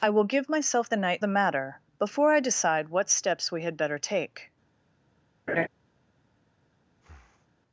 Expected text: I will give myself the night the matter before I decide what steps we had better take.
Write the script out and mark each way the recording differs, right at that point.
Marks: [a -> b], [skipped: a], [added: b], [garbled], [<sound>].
I will give myself the night the matter before I decide what steps we had better take. [laugh] [breath]